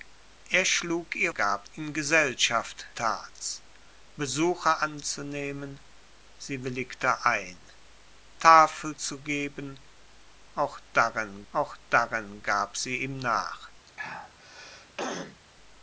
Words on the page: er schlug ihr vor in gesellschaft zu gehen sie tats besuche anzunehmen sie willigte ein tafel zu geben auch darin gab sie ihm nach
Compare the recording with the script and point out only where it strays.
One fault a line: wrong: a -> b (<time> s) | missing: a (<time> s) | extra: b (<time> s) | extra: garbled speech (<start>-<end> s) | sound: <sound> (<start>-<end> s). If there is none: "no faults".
wrong: vor -> gab (1.3 s)
missing: zu gehen sie (2.9 s)
extra: auch darin (11.5 s)
sound: throat clearing (13.9-15.4 s)